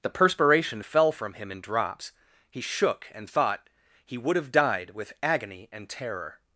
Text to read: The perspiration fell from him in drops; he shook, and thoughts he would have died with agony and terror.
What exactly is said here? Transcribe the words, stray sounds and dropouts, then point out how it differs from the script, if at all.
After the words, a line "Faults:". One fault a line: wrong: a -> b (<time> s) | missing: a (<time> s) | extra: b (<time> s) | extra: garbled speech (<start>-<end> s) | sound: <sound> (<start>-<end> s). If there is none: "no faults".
The perspiration fell from him in drops; he shook, and thought he would have died with agony and terror.
Faults:
wrong: thoughts -> thought (3.3 s)